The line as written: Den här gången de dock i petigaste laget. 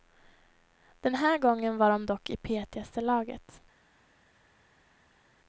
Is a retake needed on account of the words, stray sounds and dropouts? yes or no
yes